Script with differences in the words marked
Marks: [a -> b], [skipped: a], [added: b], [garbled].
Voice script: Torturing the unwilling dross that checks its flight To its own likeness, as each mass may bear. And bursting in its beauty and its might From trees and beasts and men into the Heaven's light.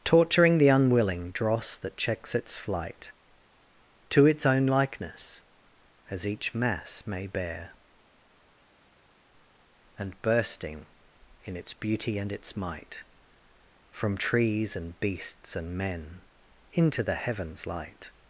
Torturing the unwilling dross that checks its flight To its own likeness, as each mass may bear. And bursting in its beauty and its might From trees and beasts and men into the Heaven's light.